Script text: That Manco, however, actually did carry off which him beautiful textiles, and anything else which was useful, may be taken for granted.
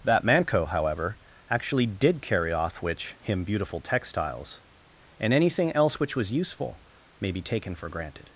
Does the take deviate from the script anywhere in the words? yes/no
no